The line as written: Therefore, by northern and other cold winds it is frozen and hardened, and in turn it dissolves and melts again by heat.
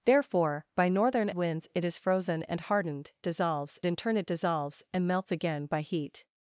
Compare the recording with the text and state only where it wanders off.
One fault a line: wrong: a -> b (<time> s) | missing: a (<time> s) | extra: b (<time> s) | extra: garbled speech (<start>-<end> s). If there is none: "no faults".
missing: and other cold (1.3 s)
wrong: and -> dissolves (3.2 s)